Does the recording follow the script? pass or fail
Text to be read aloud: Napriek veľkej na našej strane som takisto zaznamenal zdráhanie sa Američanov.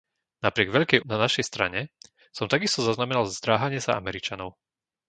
pass